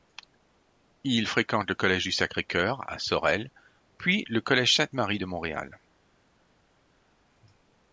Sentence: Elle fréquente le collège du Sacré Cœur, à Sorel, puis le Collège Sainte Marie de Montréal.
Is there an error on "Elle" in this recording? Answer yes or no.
yes